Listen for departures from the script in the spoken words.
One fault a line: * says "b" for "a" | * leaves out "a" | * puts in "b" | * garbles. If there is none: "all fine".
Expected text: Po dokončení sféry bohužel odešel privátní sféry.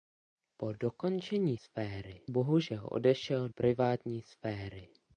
all fine